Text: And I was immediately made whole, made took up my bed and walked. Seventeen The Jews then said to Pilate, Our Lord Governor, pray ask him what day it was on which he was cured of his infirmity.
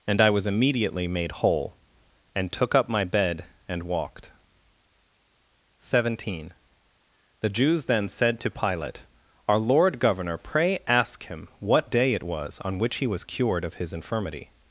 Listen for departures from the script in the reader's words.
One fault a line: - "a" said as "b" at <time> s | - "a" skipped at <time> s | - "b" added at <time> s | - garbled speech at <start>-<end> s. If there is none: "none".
- "made" said as "and" at 2.4 s